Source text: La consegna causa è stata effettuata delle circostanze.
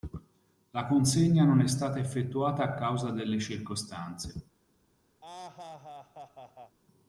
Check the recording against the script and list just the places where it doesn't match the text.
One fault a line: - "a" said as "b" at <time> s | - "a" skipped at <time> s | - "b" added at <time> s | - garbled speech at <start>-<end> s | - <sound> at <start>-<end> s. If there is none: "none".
- "causa" said as "non" at 1.4 s
- "a causa" added at 2.6 s
- laugh at 5.2-6.8 s